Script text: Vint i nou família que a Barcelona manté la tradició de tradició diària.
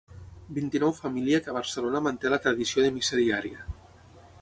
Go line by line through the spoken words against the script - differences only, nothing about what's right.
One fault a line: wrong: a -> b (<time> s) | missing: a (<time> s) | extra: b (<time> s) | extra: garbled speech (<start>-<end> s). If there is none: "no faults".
wrong: tradició -> missa (3.0 s)